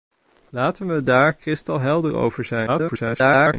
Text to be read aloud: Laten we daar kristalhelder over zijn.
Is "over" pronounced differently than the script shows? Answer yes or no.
no